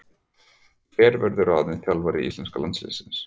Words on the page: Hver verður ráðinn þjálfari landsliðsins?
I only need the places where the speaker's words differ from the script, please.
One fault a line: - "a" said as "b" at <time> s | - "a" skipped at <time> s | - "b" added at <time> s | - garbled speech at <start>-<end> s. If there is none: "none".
- "íslenska" added at 2.3 s